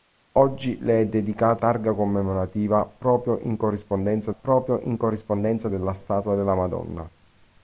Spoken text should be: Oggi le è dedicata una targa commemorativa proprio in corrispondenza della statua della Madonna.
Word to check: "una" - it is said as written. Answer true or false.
false